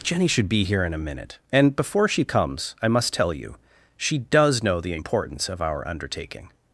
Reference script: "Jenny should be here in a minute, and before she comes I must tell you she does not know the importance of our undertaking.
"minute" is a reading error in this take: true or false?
false